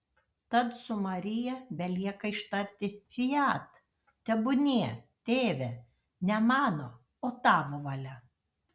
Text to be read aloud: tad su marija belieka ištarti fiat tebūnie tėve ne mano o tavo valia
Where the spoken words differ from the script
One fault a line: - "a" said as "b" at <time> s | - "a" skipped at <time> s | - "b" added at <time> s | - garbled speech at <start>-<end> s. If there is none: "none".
none